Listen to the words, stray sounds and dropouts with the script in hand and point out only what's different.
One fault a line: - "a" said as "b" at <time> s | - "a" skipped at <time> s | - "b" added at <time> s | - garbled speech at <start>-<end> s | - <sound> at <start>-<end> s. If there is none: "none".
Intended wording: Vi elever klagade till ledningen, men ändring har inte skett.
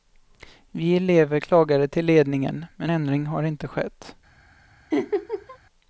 - laugh at 4.9-5.6 s